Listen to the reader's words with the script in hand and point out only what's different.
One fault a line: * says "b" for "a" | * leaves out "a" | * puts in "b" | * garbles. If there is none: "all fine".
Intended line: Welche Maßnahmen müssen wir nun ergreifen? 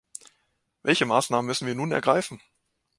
all fine